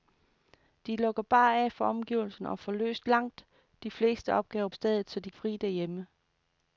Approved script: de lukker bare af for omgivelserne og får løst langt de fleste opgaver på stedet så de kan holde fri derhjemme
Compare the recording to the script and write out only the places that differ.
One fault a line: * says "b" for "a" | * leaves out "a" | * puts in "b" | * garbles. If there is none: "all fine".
* leaves out "på"
* leaves out "kan holde"